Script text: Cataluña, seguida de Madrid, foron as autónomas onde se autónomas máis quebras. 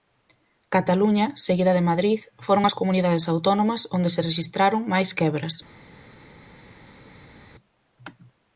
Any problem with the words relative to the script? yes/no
yes